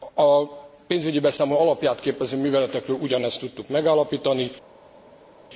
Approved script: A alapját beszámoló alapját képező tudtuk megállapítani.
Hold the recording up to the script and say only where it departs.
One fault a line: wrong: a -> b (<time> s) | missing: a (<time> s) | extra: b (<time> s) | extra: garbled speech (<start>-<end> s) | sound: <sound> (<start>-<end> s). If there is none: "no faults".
wrong: alapját -> pénzügyi (0.9 s)
extra: műveletekről ugyanezt (2.4 s)